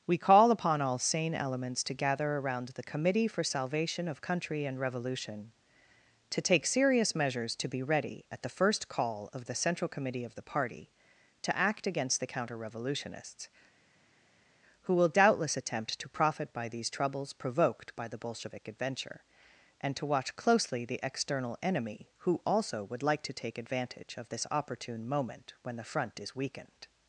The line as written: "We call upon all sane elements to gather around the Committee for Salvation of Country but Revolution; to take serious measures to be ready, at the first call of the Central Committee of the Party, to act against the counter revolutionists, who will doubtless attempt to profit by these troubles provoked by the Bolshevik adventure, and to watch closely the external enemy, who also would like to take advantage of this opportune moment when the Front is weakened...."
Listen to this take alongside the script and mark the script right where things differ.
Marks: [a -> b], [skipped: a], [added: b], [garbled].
"We call upon all sane elements to gather around the Committee for Salvation of Country [but -> and] Revolution; to take serious measures to be ready, at the first call of the Central Committee of the Party, to act against the counter revolutionists, who will doubtless attempt to profit by these troubles provoked by the Bolshevik adventure, and to watch closely the external enemy, who also would like to take advantage of this opportune moment when the Front is weakened...."